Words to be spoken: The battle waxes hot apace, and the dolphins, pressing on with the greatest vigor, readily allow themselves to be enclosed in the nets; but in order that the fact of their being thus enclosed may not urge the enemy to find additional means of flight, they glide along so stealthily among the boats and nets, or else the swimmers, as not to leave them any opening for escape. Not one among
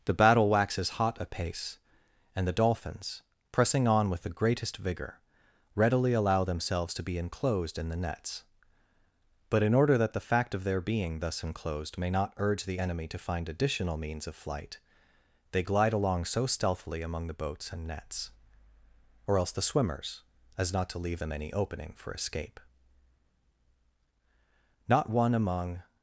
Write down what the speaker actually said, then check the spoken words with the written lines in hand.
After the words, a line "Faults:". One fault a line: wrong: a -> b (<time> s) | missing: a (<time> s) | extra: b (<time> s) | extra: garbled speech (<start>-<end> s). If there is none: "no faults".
The battle waxes hot apace, and the dolphins, pressing on with the greatest vigor, readily allow themselves to be enclosed in the nets; but in order that the fact of their being thus enclosed may not urge the enemy to find additional means of flight, they glide along so stealthily among the boats and nets, or else the swimmers, as not to leave them any opening for escape. Not one among
Faults:
no faults